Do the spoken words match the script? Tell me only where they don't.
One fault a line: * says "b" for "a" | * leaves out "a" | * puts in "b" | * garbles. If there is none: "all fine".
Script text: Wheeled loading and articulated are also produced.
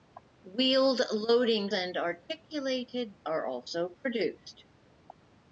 all fine